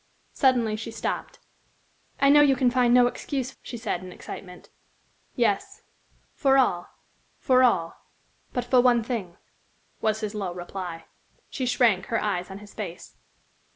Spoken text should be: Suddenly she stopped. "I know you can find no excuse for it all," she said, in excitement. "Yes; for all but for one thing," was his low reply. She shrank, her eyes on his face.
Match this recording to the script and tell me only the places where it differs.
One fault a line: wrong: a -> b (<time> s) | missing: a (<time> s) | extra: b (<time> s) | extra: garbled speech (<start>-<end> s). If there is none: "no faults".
missing: for it all (3.5 s)
extra: for all (7.4 s)